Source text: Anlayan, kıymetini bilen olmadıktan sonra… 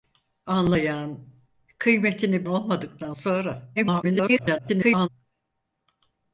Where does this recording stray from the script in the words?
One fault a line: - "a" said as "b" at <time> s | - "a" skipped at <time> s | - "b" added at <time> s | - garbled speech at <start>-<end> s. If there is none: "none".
- "bilen" skipped at 2.5 s
- garbled speech at 3.8-5.1 s